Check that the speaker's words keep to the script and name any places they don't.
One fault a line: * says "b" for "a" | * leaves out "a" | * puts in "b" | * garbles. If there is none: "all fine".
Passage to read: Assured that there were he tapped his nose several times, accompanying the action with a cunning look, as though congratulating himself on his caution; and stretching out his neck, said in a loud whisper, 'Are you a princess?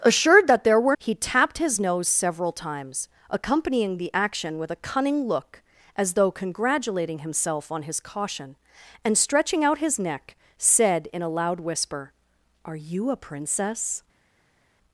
all fine